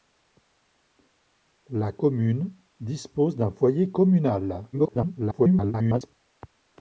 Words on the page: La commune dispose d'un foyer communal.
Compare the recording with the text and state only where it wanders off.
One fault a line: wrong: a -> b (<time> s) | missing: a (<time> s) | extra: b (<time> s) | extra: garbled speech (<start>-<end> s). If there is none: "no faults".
extra: garbled speech (4.7-6.1 s)